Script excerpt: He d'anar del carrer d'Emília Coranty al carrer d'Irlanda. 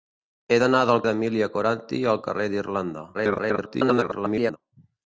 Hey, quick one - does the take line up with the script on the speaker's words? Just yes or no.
no